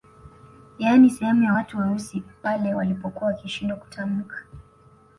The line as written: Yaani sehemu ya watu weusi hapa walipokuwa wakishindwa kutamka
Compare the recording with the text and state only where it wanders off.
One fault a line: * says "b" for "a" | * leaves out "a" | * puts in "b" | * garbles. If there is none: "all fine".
* says "pale" for "hapa"